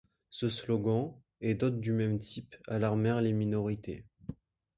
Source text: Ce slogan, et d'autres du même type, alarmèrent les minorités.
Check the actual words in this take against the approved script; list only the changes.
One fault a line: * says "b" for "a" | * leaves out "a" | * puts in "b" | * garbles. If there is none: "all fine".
all fine